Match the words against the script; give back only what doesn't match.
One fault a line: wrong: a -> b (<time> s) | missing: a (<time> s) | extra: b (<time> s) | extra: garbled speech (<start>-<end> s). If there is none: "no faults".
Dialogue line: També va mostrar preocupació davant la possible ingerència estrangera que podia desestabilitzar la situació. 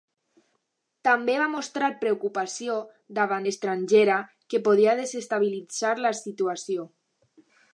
missing: la possible ingerència (3.5 s)